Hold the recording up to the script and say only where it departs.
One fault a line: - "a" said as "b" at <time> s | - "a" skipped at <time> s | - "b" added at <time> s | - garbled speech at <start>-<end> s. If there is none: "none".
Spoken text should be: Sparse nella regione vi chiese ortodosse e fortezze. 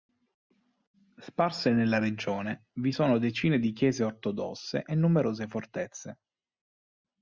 - "sono decine di" added at 2.9 s
- "numerose" added at 5.0 s